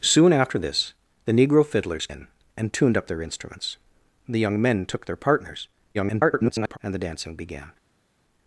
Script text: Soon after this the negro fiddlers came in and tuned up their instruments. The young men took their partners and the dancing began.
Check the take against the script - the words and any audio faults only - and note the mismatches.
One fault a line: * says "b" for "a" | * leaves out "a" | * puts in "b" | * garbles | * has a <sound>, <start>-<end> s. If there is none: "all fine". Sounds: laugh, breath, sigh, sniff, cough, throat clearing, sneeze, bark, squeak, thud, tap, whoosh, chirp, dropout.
* leaves out "came"
* garbles